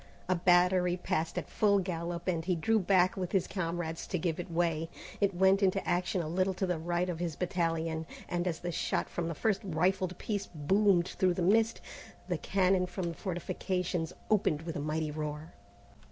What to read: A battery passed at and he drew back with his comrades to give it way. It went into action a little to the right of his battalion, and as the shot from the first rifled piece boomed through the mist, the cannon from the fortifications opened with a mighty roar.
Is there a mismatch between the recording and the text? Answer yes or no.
yes